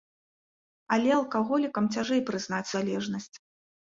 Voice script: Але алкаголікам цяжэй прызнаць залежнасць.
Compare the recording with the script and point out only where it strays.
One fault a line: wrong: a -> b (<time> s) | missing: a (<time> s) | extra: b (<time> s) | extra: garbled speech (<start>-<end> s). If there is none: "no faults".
no faults